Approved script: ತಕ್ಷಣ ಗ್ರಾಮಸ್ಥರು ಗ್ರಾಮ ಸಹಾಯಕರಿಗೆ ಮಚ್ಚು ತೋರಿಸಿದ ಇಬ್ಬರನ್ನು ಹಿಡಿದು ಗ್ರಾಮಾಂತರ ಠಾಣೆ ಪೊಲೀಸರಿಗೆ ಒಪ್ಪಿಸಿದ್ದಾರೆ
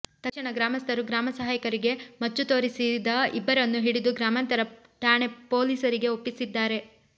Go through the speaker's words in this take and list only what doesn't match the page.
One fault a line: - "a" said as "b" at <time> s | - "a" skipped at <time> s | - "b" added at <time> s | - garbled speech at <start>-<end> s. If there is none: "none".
none